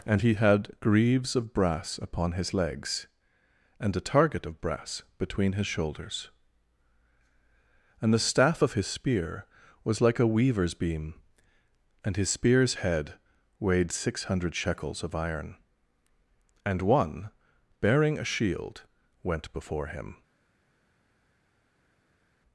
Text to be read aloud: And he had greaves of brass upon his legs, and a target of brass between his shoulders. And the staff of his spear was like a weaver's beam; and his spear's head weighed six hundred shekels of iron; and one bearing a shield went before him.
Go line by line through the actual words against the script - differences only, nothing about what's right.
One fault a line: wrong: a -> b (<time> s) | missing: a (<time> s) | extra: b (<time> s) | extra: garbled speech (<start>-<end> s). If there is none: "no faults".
no faults